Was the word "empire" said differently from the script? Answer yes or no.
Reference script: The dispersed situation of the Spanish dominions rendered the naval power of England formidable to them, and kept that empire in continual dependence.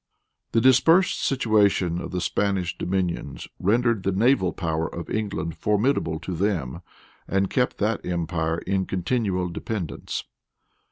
no